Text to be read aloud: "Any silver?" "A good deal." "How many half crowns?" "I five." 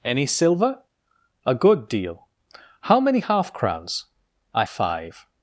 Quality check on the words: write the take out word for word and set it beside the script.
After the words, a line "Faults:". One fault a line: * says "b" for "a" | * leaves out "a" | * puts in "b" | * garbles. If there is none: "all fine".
"Any silver?" "A good deal." "How many half crowns?" "I five."
Faults:
all fine